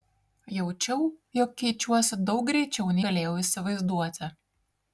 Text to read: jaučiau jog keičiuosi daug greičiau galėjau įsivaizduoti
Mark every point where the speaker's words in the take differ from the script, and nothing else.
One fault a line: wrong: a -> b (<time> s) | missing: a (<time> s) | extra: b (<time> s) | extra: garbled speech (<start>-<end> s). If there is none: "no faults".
no faults